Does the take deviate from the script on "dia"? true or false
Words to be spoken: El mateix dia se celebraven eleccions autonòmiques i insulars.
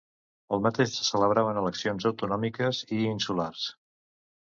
true